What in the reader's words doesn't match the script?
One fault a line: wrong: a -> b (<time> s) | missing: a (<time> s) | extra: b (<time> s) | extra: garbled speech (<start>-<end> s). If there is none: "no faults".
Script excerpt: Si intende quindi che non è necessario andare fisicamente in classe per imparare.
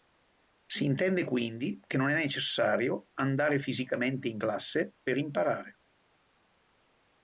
no faults